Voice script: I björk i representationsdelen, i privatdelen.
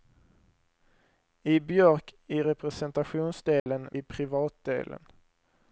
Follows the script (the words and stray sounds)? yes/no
no